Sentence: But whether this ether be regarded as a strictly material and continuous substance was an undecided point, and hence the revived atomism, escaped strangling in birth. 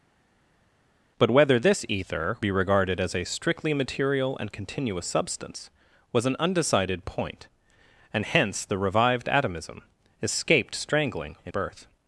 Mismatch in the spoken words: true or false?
false